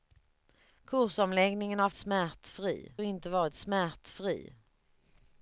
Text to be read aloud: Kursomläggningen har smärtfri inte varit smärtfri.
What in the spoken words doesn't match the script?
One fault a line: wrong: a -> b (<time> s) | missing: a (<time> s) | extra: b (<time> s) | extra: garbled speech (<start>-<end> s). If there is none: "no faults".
no faults